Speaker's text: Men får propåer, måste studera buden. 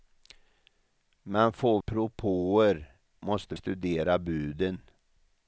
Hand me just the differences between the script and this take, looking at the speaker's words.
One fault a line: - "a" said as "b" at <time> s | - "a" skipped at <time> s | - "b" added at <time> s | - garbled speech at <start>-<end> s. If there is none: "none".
none